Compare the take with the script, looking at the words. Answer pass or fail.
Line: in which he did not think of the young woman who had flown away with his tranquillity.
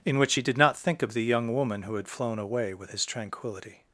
pass